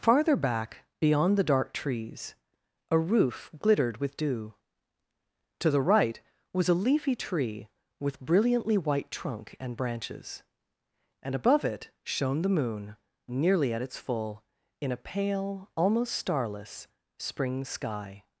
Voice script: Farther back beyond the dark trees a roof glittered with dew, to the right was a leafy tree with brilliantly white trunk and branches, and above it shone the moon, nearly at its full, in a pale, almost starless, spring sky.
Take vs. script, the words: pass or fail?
pass